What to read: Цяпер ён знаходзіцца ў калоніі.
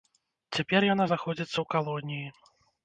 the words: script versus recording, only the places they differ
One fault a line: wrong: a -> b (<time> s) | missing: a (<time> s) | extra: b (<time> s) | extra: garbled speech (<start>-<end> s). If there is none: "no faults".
wrong: ён -> яна (0.9 s)